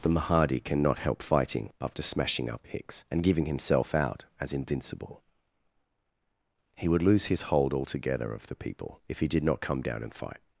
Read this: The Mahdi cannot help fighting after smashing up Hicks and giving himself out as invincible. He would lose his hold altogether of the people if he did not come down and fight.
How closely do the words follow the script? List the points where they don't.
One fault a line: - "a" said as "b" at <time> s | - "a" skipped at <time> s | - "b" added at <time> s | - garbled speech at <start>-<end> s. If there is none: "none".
none